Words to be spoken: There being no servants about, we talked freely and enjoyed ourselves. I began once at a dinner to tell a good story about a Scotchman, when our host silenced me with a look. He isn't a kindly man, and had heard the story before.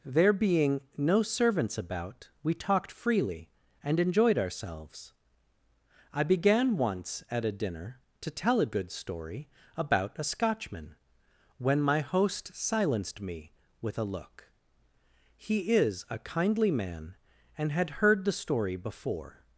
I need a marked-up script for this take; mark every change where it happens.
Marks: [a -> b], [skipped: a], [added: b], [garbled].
There being no servants about, we talked freely and enjoyed ourselves. I began once at a dinner to tell a good story about a Scotchman, when [our -> my] host silenced me with a look. He [isn't -> is] a kindly man, and had heard the story before.